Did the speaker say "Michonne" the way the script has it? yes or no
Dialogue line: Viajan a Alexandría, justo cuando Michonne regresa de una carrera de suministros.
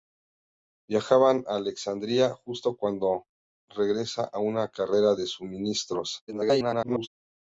no